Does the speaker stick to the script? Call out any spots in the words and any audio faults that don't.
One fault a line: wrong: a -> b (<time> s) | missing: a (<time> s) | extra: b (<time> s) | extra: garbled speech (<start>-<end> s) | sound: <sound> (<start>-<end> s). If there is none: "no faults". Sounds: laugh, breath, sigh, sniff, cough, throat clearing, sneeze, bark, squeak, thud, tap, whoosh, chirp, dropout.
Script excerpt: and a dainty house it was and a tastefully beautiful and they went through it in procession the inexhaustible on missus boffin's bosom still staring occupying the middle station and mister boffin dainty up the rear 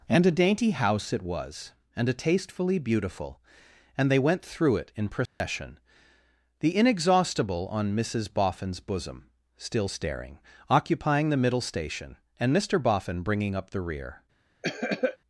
sound: dropout (5.3-5.4 s)
wrong: dainty -> bringing (13.2 s)
sound: cough (14.6-15.2 s)